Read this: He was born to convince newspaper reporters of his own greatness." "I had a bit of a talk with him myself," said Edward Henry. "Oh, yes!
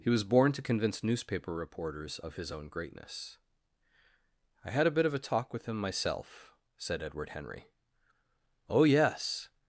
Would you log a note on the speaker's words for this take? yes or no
no